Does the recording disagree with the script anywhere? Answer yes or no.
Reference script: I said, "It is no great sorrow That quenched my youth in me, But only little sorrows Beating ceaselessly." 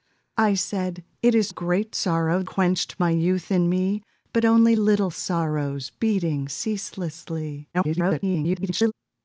yes